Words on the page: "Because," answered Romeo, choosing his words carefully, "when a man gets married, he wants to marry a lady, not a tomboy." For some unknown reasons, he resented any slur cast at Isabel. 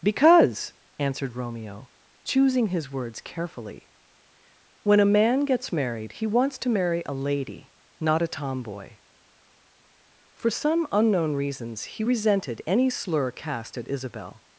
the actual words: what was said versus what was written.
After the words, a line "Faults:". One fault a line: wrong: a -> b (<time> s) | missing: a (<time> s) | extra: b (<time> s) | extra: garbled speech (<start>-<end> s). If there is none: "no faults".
"Because," answered Romeo, choosing his words carefully, "when a man gets married, he wants to marry a lady, not a tomboy." For some unknown reasons, he resented any slur cast at Isabel.
Faults:
no faults